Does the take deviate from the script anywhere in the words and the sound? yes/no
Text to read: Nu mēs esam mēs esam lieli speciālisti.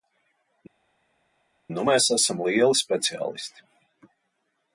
yes